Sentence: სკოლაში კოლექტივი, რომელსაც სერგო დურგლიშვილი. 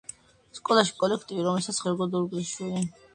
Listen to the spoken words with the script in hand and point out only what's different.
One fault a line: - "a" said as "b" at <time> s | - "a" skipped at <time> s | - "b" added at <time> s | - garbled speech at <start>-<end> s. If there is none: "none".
none